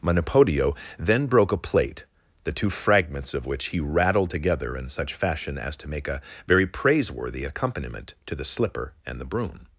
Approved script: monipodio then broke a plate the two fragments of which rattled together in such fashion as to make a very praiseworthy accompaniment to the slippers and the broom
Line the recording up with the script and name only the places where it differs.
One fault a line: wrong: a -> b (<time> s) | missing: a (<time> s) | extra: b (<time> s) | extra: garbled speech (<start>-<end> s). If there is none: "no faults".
extra: he (3.7 s)
wrong: slippers -> slipper (8.4 s)